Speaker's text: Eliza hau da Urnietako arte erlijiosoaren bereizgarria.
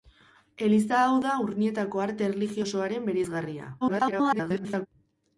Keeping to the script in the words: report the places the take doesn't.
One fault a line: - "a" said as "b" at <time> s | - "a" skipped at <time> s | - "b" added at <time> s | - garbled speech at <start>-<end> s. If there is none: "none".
- garbled speech at 3.8-4.9 s